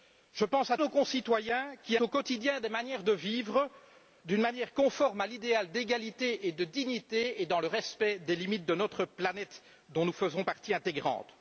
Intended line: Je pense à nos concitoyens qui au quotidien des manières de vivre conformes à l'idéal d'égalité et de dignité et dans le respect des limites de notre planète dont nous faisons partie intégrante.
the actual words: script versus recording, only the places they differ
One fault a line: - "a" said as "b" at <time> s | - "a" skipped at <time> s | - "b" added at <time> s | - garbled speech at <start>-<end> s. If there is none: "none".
none